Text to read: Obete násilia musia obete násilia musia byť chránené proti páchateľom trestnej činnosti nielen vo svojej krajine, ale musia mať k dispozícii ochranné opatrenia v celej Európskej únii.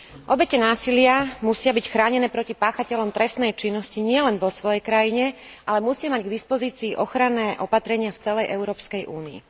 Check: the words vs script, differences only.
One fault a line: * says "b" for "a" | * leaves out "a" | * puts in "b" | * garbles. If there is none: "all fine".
* leaves out "obete násilia musia"